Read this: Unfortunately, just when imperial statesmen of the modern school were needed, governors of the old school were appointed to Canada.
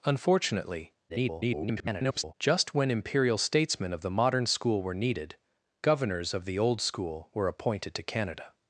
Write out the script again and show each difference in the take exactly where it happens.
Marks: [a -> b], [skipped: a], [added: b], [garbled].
Unfortunately, [garbled] just when imperial statesmen of the modern school were needed, governors of the old school were appointed to Canada.